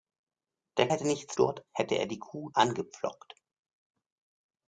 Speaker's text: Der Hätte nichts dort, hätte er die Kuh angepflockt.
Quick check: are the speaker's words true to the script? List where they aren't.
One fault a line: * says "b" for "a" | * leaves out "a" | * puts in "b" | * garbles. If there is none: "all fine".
all fine